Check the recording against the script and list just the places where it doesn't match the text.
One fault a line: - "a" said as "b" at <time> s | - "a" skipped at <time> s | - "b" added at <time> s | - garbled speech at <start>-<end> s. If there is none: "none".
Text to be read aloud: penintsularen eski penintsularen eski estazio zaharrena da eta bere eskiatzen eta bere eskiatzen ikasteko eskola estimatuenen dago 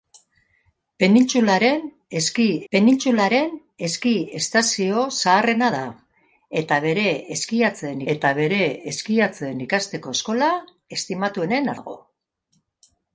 none